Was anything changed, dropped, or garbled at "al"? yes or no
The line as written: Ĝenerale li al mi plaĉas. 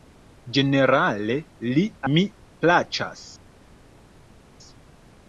yes